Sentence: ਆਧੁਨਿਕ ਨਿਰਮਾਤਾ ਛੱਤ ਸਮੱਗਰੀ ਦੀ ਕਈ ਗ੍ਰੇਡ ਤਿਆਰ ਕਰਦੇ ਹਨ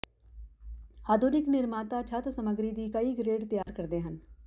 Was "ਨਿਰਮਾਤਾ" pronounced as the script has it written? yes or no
yes